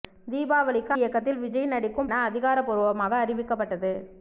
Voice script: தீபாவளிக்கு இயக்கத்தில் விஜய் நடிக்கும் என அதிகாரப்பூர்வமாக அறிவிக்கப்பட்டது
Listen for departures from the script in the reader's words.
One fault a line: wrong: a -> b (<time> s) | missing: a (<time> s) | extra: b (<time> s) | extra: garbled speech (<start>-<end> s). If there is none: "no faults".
no faults